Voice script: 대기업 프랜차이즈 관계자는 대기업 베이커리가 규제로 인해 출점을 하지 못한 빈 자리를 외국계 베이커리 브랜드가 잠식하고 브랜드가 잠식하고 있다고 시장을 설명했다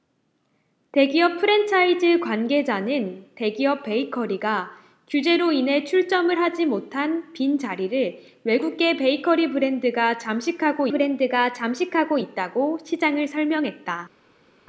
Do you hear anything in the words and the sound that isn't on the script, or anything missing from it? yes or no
no